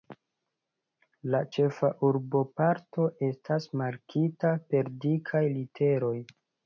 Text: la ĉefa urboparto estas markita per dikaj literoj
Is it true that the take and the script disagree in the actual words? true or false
false